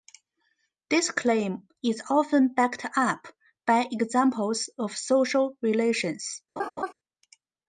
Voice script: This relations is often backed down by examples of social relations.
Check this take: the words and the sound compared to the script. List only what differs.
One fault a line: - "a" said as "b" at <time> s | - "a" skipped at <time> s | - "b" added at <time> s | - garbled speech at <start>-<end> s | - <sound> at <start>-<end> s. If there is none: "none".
- "relations" said as "claim" at 1.1 s
- "down" said as "up" at 3.0 s
- laugh at 6.6-6.9 s